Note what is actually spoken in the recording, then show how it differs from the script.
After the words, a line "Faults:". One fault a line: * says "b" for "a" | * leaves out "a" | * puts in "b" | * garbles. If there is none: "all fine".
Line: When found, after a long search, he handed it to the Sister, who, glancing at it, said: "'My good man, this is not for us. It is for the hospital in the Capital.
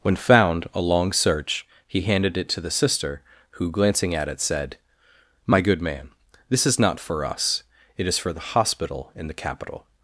When found, a long search, he handed it to the Sister, who, glancing at it, said: "'My good man, this is not for us. It is for the hospital in the Capital.
Faults:
* leaves out "after"